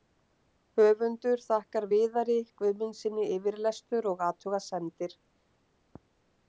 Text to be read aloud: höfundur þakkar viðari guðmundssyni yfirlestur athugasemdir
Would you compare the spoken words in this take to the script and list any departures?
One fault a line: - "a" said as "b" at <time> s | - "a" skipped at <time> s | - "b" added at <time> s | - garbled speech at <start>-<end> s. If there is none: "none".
- "og" added at 4.2 s